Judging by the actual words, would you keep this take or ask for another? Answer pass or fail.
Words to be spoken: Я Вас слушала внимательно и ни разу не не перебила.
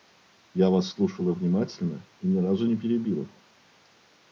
fail